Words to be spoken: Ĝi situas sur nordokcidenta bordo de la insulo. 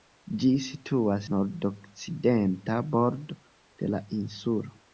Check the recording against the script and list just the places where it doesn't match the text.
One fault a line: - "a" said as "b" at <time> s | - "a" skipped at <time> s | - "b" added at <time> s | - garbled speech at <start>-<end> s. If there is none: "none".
- "sur" skipped at 1.3 s